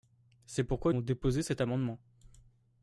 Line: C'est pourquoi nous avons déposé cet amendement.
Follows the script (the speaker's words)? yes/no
no